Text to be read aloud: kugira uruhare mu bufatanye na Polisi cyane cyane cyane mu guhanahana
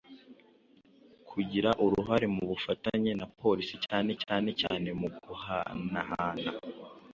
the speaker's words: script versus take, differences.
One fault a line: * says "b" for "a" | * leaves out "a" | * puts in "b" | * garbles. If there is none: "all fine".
all fine